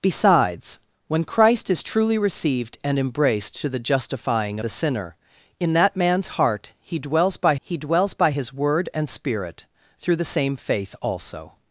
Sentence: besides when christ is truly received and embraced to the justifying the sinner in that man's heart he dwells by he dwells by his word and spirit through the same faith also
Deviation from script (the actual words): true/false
false